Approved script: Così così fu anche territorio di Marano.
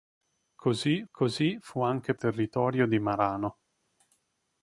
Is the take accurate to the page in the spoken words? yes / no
yes